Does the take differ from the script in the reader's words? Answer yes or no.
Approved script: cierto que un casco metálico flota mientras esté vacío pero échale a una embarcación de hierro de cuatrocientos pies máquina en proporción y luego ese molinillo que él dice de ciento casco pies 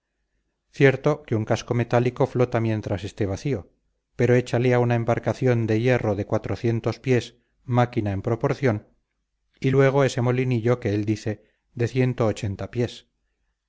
yes